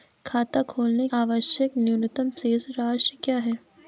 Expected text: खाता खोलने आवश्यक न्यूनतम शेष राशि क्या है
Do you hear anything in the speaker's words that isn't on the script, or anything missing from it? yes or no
no